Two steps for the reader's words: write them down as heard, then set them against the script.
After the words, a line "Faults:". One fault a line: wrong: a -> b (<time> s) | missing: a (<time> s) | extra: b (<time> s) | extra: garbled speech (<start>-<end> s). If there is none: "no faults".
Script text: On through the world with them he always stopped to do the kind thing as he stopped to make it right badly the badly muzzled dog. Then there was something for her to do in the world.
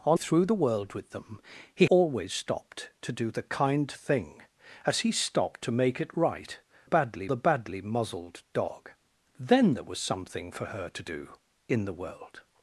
On through the world with them he always stopped to do the kind thing as he stopped to make it right badly the badly muzzled dog. Then there was something for her to do in the world.
Faults:
no faults